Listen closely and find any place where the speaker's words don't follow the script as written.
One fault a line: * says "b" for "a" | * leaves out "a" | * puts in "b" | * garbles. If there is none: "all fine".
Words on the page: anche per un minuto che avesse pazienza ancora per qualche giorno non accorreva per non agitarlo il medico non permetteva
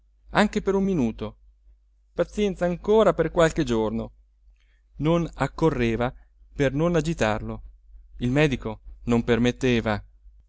* leaves out "che avesse"